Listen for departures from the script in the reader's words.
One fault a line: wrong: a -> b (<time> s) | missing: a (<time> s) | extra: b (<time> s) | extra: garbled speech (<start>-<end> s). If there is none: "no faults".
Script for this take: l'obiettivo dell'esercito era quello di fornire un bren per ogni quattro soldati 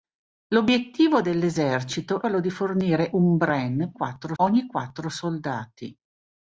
missing: era (2.2 s)
wrong: per -> quattro (3.9 s)